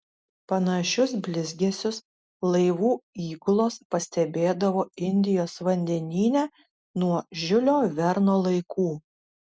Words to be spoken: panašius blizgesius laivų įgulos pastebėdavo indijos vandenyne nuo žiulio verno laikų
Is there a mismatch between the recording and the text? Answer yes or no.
no